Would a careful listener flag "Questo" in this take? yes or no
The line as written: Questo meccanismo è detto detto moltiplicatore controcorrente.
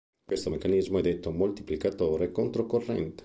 no